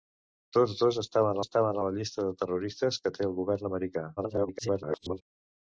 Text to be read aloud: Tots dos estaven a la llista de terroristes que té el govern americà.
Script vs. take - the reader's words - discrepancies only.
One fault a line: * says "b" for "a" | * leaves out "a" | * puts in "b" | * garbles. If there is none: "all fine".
* puts in "estaven"
* garbles